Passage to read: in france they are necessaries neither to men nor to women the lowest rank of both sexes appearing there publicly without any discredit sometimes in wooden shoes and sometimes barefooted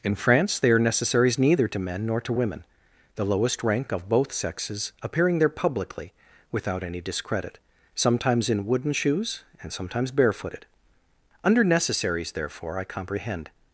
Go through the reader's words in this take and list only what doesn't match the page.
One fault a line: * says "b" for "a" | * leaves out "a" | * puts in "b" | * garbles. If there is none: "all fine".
* puts in "under necessaries therefore i comprehend"